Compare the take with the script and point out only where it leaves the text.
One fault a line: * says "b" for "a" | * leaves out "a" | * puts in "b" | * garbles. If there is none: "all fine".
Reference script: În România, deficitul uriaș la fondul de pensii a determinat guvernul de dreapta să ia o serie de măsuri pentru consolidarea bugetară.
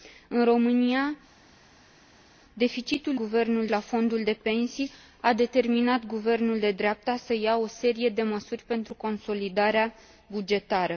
* says "guvernul" for "uriaș"